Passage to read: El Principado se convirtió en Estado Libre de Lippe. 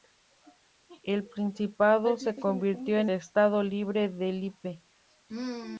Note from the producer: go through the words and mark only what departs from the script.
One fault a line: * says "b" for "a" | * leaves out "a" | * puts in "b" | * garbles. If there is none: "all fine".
all fine